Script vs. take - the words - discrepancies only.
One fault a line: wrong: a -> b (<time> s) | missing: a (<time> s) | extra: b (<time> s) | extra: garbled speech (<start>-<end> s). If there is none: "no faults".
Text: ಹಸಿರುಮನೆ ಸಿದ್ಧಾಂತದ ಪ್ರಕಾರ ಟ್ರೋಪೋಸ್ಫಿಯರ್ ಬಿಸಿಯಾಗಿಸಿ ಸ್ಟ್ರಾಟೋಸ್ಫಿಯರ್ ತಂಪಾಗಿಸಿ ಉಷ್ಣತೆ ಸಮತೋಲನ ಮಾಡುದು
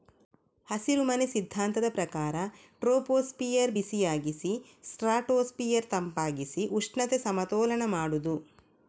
no faults